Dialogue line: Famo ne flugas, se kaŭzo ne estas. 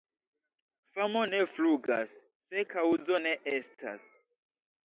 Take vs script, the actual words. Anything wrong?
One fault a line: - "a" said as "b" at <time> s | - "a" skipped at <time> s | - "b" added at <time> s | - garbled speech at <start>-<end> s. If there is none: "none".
none